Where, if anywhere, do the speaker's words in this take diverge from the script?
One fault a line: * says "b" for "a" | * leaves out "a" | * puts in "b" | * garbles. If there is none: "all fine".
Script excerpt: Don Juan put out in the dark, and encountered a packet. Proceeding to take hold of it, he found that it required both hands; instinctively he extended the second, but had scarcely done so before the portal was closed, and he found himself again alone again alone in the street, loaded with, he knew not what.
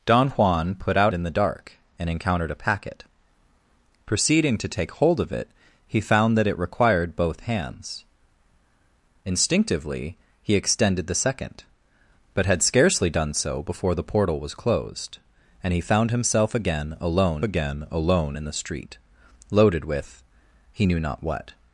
all fine